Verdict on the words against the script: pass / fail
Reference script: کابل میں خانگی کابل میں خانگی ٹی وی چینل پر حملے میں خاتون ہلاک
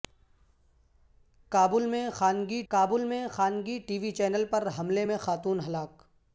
pass